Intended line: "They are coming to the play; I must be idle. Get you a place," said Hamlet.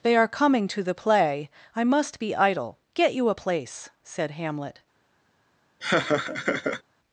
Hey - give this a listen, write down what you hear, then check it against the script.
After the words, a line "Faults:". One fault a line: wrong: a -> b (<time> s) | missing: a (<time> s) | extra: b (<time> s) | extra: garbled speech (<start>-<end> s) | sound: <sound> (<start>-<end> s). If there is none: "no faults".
"They are coming to the play; I must be idle. Get you a place," said Hamlet.
Faults:
sound: laugh (5.8-6.8 s)